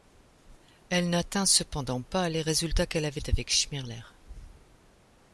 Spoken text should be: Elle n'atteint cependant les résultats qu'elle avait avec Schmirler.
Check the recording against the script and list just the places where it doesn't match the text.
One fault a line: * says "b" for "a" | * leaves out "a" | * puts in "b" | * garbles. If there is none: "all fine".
* puts in "pas"